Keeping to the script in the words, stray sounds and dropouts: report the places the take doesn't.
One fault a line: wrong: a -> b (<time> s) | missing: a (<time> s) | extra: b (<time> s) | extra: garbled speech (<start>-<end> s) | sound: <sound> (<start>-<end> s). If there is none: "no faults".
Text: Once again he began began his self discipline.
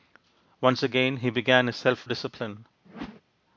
missing: began (1.7 s)
sound: whoosh (2.8-3.2 s)